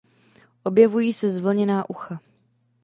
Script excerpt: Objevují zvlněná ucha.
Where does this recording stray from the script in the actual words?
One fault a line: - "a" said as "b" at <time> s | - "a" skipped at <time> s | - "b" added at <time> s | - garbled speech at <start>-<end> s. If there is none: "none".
- "se" added at 1.1 s